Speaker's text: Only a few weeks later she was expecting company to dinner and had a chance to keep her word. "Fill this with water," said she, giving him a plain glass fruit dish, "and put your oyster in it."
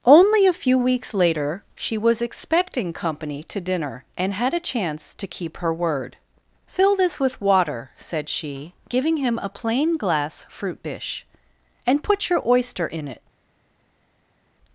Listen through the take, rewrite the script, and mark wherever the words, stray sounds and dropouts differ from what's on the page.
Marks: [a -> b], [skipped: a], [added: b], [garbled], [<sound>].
Only a few weeks later she was expecting company to dinner and had a chance to keep her word. "Fill this with water," said she, giving him a plain glass fruit dish, "and put your oyster in it."